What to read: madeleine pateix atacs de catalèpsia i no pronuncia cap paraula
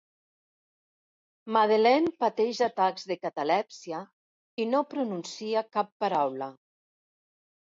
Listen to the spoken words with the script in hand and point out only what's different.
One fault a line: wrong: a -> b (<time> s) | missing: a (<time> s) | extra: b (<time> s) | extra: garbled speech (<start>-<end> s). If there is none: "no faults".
no faults